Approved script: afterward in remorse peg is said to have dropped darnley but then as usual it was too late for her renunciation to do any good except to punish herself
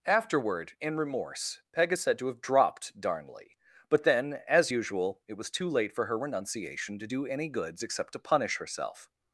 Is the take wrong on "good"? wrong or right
wrong